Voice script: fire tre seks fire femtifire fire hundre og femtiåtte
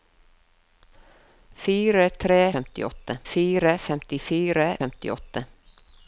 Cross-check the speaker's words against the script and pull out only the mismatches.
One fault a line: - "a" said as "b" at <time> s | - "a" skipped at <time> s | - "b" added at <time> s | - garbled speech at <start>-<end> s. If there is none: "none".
- "seks" said as "femtiåtte" at 2.6 s
- "fire hundre og" skipped at 4.7 s